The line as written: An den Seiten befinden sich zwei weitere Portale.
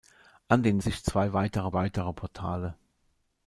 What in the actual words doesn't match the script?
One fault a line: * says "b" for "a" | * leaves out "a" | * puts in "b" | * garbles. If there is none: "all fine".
* leaves out "Seiten befinden"
* puts in "weitere"